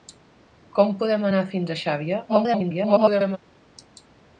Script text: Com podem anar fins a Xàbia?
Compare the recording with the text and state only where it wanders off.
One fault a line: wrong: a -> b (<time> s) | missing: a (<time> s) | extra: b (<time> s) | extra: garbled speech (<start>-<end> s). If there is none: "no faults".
extra: garbled speech (2.3-3.4 s)